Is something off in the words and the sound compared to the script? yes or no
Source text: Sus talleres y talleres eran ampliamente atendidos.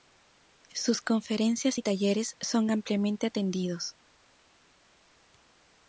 yes